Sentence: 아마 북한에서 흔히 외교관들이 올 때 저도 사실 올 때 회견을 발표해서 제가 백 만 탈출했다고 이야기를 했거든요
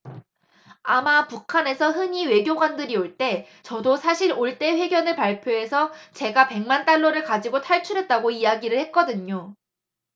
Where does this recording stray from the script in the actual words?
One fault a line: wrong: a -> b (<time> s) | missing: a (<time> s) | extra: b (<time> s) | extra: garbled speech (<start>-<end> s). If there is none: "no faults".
extra: 달러를 가지고 (6.8 s)